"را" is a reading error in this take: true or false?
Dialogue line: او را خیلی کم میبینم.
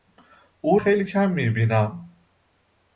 true